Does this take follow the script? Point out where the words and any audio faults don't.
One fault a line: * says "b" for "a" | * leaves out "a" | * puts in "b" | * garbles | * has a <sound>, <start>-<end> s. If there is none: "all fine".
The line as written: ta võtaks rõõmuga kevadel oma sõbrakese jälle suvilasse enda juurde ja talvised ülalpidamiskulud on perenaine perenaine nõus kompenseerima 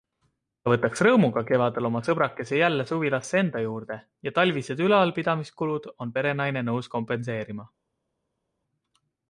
* leaves out "perenaine"